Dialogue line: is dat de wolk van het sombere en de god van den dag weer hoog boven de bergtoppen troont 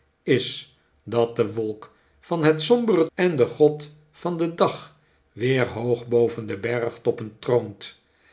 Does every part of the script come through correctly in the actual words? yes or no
yes